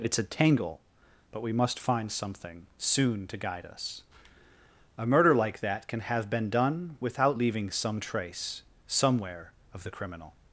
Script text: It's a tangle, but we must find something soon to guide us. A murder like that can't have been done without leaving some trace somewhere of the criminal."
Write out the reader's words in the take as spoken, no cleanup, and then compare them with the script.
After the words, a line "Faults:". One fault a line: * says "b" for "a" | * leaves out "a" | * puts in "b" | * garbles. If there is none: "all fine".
It's a tangle, but we must find something soon to guide us. A murder like that can have been done without leaving some trace somewhere of the criminal."
Faults:
* says "can" for "can't"